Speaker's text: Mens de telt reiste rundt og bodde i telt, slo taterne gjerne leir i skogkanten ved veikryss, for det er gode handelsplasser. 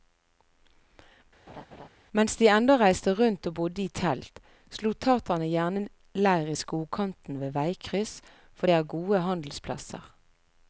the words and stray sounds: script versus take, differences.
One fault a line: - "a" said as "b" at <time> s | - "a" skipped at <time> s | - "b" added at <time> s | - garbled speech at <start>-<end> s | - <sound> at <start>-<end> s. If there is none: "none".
- laugh at 1.5-1.9 s
- "telt" said as "ennå" at 2.6 s